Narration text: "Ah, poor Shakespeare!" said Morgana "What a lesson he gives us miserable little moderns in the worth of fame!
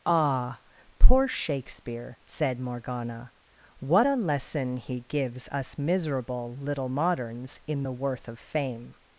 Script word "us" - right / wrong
right